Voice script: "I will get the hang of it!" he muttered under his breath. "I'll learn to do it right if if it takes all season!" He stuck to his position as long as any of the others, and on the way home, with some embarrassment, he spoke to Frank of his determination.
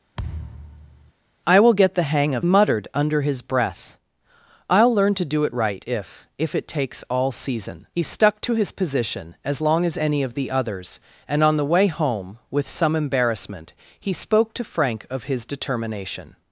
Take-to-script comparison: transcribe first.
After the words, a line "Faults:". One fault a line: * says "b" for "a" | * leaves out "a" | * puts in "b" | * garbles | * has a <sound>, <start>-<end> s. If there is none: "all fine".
"I will get the hang of muttered under his breath. "I'll learn to do it right if if it takes all season!" He stuck to his position as long as any of the others, and on the way home, with some embarrassment, he spoke to Frank of his determination.
Faults:
* has a thud, 0.2-1.1 s
* leaves out "it he"